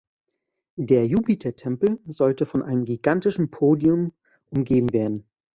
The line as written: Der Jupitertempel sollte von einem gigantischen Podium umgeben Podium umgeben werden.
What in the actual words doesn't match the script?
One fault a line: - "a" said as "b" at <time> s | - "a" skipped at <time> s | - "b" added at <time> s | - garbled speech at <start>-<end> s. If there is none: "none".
- "Podium umgeben" skipped at 4.9 s